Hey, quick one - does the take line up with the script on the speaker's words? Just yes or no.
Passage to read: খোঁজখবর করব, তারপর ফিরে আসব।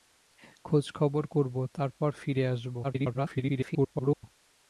no